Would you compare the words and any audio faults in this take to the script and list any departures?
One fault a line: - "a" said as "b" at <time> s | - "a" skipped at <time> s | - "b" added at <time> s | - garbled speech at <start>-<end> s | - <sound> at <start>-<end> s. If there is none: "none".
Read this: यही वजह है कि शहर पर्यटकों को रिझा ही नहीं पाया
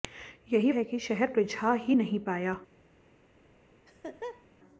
- "वजह" skipped at 0.7 s
- "पर्यटकों को" skipped at 1.3 s
- laugh at 3.9-4.5 s